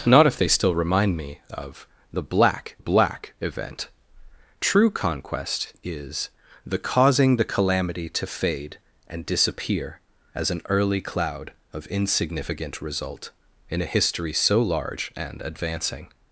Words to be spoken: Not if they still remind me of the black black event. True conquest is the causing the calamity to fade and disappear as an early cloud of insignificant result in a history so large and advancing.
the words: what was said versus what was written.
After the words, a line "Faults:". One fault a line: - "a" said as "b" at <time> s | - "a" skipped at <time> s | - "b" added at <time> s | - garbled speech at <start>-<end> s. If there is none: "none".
Not if they still remind me of the black black event. True conquest is the causing the calamity to fade and disappear as an early cloud of insignificant result in a history so large and advancing.
Faults:
none